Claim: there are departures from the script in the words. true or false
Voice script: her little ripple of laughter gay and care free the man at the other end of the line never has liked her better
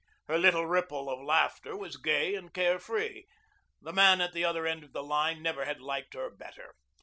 true